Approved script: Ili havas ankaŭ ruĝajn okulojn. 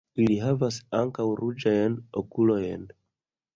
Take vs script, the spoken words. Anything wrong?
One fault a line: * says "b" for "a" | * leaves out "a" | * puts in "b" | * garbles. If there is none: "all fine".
all fine